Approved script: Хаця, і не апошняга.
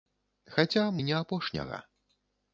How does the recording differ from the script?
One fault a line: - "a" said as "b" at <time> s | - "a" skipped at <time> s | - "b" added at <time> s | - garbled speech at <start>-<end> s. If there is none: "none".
none